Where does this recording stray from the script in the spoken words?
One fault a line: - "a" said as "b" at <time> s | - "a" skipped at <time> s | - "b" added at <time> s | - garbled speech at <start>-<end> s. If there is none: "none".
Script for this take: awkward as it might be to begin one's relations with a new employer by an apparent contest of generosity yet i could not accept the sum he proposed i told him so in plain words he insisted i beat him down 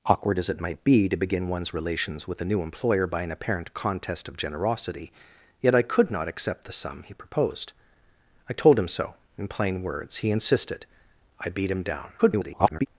- garbled speech at 12.2-12.9 s